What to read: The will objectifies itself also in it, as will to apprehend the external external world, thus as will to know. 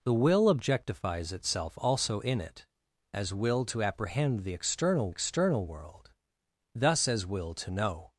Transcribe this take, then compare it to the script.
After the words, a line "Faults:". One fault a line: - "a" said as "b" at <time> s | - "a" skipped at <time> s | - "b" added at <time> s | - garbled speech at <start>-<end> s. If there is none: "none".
The will objectifies itself also in it, as will to apprehend the external external world, thus as will to know.
Faults:
none